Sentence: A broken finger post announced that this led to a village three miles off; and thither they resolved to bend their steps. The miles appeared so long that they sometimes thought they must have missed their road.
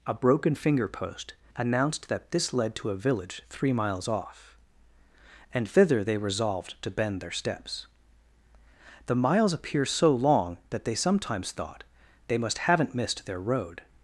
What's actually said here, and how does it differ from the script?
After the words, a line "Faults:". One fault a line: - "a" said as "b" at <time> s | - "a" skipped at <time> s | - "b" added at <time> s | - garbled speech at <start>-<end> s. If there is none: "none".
A broken finger post announced that this led to a village three miles off; and thither they resolved to bend their steps. The miles appear so long that they sometimes thought they must haven't missed their road.
Faults:
- "appeared" said as "appear" at 9.5 s
- "have" said as "haven't" at 12.6 s